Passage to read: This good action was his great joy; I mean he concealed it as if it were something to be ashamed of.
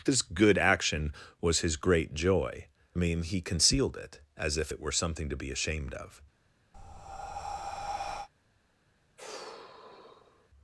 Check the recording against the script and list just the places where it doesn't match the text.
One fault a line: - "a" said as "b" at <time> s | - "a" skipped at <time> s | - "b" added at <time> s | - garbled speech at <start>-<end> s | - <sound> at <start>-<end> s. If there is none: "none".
- breath at 6.7-8.3 s
- sigh at 9.2-10.5 s